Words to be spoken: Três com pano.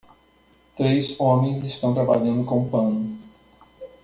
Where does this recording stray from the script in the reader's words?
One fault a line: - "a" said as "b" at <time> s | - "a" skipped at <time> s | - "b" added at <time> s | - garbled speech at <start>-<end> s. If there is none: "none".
- "homens estão trabalhando" added at 1.2 s